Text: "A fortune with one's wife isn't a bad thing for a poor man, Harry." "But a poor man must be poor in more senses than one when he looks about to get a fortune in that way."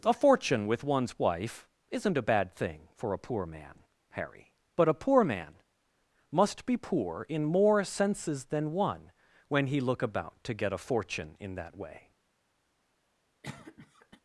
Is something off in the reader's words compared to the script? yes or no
yes